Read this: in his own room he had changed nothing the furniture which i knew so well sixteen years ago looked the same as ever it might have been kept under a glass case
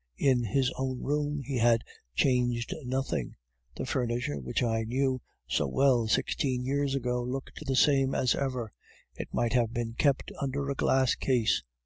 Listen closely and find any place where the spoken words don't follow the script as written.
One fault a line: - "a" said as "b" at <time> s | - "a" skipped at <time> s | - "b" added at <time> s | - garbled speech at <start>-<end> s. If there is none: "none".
none